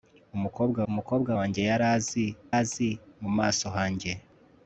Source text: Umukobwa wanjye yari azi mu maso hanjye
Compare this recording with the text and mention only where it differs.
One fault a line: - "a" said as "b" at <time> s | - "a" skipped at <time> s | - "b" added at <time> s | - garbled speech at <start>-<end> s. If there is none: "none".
- "umukobwa" added at 0.9 s
- "azi" added at 2.6 s